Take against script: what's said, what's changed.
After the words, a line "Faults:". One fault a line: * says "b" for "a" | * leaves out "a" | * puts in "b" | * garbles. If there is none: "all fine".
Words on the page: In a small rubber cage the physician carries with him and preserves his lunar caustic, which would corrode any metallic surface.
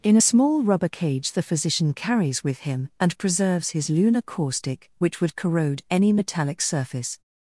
In a small rubber cage the physician carries with him and preserves his lunar caustic, which would corrode any metallic surface.
Faults:
all fine